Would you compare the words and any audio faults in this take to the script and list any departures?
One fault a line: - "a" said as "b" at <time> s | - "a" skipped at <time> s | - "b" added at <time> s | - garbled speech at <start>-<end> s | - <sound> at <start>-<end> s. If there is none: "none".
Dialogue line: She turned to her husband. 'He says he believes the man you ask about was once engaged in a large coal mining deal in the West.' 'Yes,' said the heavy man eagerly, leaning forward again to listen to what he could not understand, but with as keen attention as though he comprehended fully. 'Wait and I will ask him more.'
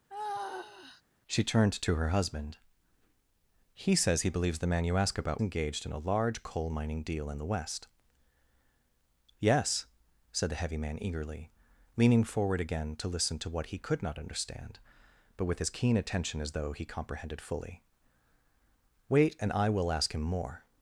- sigh at 0.1-1.0 s
- "was once" skipped at 5.4 s